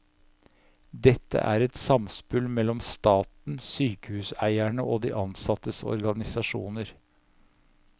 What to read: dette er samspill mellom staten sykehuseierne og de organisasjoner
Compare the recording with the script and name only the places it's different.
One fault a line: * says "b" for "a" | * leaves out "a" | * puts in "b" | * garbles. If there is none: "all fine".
* puts in "et"
* puts in "ansattes"